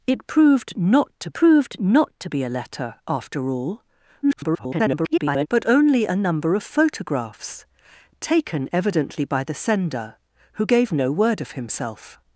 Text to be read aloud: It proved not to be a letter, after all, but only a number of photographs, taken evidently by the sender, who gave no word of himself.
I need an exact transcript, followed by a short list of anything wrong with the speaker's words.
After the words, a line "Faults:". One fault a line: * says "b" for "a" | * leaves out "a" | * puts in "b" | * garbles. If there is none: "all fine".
It proved not to proved not to be a letter, after all, [garbled] but only a number of photographs, taken evidently by the sender, who gave no word of himself.
Faults:
* puts in "proved not to"
* garbles